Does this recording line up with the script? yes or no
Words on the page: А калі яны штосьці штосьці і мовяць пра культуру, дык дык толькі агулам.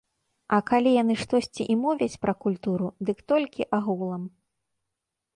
no